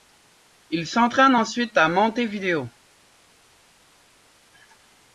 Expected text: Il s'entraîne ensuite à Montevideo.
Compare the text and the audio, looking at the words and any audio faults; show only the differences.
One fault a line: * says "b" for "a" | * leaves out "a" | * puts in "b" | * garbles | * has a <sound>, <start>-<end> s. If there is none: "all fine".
all fine